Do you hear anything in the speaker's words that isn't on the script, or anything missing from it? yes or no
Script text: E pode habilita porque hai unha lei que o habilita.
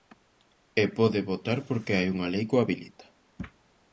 yes